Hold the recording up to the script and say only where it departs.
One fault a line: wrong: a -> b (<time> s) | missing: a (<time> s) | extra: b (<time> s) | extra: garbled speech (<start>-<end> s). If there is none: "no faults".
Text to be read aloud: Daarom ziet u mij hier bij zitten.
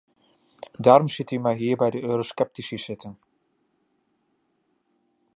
extra: de eurosceptici (1.9 s)